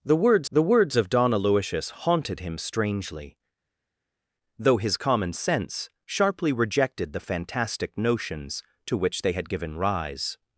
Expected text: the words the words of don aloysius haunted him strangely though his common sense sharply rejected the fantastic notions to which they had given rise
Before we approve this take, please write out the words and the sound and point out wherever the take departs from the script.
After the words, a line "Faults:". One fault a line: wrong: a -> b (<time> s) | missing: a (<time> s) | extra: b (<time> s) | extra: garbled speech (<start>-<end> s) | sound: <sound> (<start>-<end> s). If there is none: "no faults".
the words the words of don aloysius haunted him strangely though his common sense sharply rejected the fantastic notions to which they had given rise
Faults:
no faults